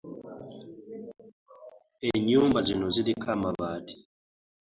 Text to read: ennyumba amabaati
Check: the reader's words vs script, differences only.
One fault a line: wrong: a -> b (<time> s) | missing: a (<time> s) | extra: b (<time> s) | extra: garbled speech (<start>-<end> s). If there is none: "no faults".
extra: zino ziriko (2.6 s)